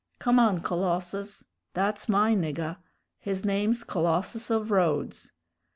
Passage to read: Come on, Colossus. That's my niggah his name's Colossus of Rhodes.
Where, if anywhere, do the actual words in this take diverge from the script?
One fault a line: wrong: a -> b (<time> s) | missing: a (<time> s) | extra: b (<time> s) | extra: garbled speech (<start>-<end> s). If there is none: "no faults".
no faults